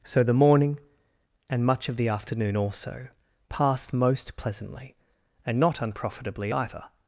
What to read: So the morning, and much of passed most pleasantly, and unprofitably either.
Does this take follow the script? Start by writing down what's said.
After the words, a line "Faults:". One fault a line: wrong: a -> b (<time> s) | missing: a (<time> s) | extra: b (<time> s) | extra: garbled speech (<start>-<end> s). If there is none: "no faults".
So the morning, and much of the afternoon also, passed most pleasantly, and not unprofitably either.
Faults:
extra: the afternoon also (1.9 s)
extra: not (5.6 s)